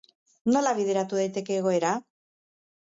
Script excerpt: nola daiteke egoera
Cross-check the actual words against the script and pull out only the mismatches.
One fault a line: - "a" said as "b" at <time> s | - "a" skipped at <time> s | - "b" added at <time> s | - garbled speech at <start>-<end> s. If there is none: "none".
- "bideratu" added at 0.8 s